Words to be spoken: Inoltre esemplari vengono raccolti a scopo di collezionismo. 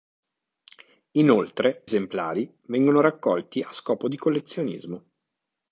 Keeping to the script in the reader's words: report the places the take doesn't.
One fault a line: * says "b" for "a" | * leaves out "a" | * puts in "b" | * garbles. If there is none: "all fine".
all fine